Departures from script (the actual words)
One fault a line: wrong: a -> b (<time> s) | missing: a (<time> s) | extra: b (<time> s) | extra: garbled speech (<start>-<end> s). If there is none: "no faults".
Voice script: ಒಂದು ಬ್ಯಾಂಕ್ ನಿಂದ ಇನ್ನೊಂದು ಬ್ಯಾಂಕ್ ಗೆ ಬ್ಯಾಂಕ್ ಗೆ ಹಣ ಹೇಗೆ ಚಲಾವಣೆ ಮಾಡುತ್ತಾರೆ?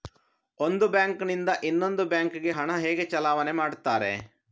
missing: ಬ್ಯಾಂಕ್ ಗೆ (2.5 s)